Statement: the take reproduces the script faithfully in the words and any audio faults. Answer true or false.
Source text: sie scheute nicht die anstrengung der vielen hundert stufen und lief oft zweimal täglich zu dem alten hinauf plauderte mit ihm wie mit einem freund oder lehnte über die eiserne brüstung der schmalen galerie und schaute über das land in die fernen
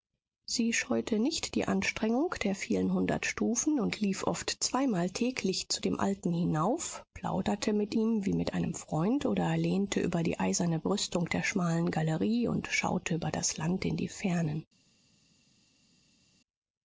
true